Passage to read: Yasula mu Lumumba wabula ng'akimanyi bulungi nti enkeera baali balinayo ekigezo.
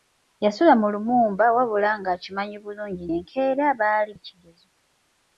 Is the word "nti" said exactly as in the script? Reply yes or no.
no